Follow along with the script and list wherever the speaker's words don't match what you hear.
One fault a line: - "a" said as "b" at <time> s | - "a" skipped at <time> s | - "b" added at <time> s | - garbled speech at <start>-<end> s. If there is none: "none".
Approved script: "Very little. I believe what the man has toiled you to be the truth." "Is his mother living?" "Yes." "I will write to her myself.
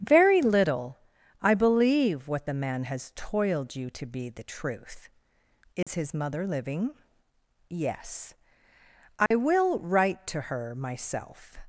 none